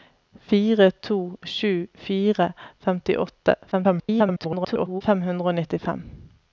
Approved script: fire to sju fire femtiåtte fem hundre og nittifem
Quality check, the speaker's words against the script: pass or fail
fail